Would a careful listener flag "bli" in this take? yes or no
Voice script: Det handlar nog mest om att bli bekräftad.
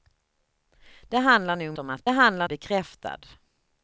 yes